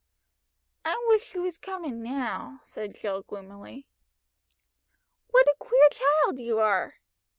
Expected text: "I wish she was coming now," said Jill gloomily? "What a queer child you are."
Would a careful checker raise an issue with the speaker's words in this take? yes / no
no